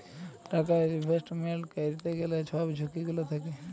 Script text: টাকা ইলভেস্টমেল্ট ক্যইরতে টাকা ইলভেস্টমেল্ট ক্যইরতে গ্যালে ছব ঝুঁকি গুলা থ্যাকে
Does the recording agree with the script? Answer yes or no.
no